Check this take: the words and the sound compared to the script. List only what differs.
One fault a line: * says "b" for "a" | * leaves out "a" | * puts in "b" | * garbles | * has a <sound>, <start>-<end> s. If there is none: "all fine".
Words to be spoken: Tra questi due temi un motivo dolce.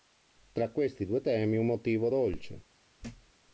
* has a thud, 3.0-3.3 s